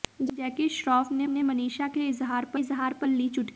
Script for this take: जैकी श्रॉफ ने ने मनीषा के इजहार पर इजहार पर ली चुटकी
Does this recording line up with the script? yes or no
yes